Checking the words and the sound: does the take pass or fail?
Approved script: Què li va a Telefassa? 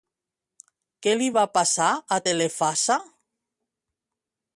fail